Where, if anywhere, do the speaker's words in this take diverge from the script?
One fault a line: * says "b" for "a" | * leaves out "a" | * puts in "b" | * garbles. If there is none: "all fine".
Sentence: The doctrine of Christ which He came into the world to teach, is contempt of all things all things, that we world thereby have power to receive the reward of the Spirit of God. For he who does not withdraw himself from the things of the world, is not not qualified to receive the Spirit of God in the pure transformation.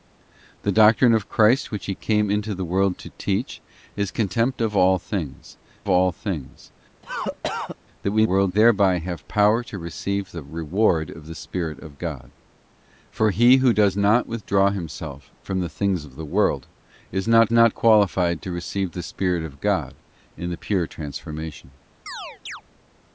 all fine